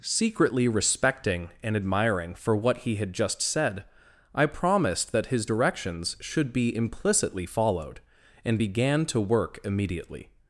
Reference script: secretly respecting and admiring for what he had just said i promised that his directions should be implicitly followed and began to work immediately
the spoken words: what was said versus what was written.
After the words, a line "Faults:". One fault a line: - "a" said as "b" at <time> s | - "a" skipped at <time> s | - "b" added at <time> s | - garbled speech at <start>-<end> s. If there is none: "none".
secretly respecting and admiring for what he had just said i promised that his directions should be implicitly followed and began to work immediately
Faults:
none